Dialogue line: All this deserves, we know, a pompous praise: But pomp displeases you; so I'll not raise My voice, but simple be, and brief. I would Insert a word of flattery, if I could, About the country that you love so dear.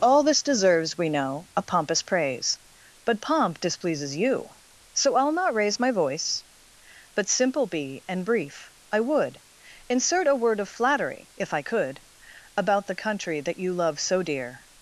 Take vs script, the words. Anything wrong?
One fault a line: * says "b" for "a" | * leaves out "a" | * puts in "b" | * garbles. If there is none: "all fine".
all fine